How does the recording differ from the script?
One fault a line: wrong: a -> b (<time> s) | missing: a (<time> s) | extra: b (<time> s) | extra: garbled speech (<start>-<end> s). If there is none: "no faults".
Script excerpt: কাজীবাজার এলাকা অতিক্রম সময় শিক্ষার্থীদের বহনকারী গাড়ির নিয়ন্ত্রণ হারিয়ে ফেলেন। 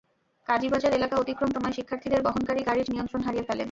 no faults